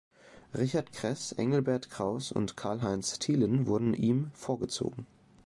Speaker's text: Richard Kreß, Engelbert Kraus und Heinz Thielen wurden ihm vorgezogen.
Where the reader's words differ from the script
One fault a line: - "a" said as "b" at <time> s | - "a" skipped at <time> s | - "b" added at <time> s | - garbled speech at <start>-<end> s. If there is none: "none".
- "Karl" added at 2.6 s